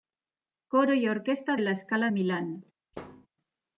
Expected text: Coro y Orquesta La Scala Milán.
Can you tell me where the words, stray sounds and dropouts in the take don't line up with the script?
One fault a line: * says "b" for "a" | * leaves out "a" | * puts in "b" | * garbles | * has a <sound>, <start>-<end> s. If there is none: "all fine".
* has a thud, 2.9-3.3 s